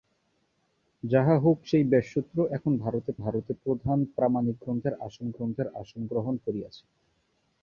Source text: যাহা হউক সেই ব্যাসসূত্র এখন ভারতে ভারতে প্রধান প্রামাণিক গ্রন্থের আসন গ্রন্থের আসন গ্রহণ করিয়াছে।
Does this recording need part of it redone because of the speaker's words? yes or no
no